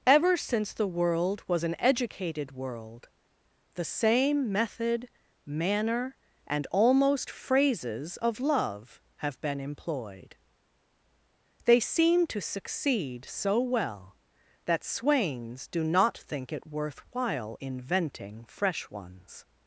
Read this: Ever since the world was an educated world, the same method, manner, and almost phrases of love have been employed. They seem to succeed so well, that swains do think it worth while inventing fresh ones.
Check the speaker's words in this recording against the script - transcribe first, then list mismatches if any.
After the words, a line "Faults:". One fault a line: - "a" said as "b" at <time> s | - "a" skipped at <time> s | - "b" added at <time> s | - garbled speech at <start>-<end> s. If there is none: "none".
Ever since the world was an educated world, the same method, manner, and almost phrases of love have been employed. They seem to succeed so well, that swains do not think it worth while inventing fresh ones.
Faults:
- "not" added at 15.8 s